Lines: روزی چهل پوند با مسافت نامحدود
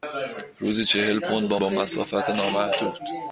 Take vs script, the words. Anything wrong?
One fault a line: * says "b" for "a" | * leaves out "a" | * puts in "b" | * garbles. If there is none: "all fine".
* puts in "با"